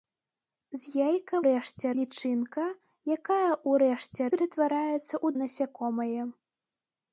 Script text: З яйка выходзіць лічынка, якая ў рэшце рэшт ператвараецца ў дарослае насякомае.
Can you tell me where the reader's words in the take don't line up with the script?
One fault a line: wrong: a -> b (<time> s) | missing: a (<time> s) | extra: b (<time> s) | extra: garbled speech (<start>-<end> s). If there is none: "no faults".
wrong: выходзіць -> рэшце (1.5 s)
missing: рэшт (4.2 s)
missing: дарослае (5.3 s)